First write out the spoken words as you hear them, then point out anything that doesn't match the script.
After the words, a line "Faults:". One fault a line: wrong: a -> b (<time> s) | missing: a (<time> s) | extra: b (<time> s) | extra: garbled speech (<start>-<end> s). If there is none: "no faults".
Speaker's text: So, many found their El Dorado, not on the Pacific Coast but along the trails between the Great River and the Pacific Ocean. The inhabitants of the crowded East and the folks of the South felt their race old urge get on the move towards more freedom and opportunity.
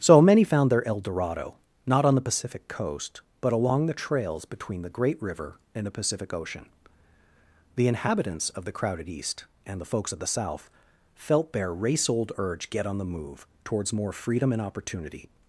So, many found their El Dorado, not on the Pacific Coast but along the trails between the Great River and the Pacific Ocean. The inhabitants of the crowded East and the folks of the South felt their race old urge get on the move towards more freedom and opportunity.
Faults:
no faults